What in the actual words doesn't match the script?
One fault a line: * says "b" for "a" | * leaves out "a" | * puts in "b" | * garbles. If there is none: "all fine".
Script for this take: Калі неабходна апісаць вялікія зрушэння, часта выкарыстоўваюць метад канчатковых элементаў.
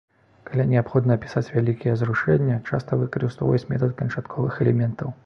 all fine